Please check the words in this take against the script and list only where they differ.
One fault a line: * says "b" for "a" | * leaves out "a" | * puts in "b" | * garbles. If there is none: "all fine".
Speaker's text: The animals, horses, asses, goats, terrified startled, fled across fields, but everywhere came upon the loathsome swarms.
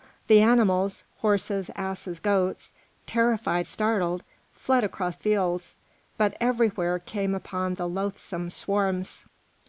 all fine